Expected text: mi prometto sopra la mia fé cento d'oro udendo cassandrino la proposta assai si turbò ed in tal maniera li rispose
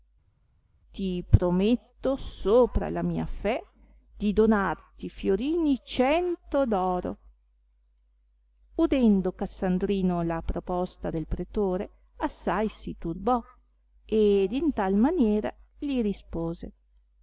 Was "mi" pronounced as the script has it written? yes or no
no